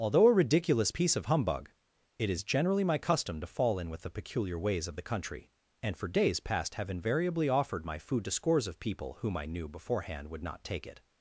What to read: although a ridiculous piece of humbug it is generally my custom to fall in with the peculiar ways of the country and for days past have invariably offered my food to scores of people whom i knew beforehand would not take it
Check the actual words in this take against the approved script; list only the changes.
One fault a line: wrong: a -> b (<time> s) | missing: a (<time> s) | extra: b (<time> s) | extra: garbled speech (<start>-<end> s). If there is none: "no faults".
no faults